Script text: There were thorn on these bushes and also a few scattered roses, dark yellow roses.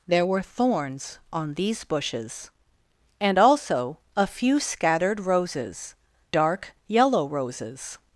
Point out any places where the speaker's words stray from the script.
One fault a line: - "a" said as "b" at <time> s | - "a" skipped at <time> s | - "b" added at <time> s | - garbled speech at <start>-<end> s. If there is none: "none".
- "thorn" said as "thorns" at 0.4 s